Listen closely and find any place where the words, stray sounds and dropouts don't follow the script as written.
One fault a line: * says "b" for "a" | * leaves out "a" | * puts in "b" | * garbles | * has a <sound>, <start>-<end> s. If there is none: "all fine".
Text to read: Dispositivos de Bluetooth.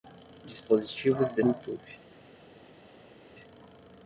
all fine